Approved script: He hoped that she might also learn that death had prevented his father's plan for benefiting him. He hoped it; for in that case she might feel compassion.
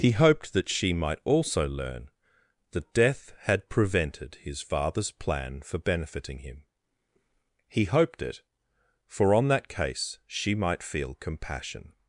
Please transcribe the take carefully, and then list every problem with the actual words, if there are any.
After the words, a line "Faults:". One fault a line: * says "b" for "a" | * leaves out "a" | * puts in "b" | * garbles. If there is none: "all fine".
He hoped that she might also learn that death had prevented his father's plan for benefiting him. He hoped it; for on that case she might feel compassion.
Faults:
* says "on" for "in"